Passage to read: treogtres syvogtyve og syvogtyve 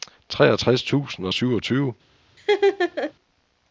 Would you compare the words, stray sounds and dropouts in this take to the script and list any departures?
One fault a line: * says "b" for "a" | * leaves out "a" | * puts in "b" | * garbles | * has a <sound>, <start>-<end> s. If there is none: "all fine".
* says "tusind" for "syvogtyve"
* has a laugh, 2.4-3.1 s